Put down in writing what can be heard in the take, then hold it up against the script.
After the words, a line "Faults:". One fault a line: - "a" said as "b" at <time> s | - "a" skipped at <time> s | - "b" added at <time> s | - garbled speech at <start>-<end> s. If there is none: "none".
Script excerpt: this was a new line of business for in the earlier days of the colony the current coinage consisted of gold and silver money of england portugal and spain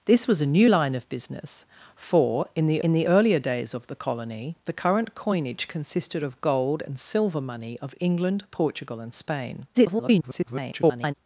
this was a new line of business for in the in the earlier days of the colony the current coinage consisted of gold and silver money of england portugal and spain [garbled]
Faults:
- "in the" added at 2.8 s
- garbled speech at 9.7-11.1 s